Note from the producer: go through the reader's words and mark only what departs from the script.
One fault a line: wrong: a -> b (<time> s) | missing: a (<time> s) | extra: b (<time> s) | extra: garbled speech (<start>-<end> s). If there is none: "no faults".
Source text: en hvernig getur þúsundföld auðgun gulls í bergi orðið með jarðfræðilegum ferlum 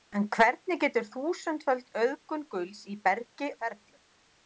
missing: orðið með jarðfræðilegum (3.5 s)